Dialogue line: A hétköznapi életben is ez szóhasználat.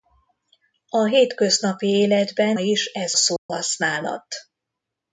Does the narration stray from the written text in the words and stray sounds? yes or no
yes